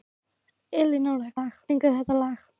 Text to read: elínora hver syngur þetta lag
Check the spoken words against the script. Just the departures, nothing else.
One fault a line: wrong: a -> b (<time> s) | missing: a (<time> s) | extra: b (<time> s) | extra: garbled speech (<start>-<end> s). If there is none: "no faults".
wrong: hver -> lag (1.4 s)